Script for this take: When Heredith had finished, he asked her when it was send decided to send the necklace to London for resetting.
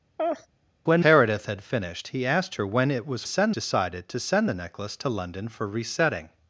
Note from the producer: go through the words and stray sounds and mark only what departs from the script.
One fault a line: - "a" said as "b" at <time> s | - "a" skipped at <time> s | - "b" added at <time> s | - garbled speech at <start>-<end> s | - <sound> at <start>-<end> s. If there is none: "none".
- laugh at 0.2-0.5 s